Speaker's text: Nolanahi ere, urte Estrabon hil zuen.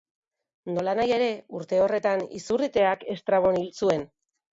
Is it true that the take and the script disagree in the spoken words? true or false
true